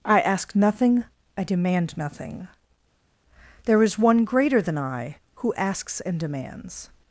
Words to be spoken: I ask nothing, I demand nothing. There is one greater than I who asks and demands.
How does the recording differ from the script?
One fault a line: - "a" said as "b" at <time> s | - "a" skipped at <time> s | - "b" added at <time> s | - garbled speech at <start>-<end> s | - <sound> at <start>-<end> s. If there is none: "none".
none